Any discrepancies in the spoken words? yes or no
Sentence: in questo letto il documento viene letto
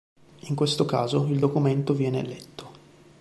yes